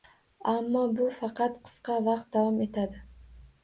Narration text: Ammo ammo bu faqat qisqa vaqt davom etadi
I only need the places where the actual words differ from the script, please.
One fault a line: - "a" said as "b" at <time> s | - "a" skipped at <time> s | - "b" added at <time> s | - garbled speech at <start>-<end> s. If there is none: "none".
- "ammo" skipped at 0.8 s